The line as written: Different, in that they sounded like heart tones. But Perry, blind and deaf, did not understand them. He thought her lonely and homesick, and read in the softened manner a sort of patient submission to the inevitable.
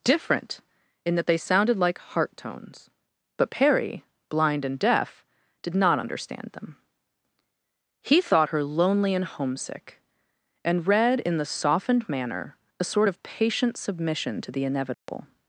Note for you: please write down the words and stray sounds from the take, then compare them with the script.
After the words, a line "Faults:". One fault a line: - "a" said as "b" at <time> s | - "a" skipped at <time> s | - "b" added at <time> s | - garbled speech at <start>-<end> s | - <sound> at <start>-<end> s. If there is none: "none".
Different, in that they sounded like heart tones. But Perry, blind and deaf, did not understand them. He thought her lonely and homesick, and read in the softened manner a sort of patient submission to the inevitable.
Faults:
- dropout at 14.9-15.1 s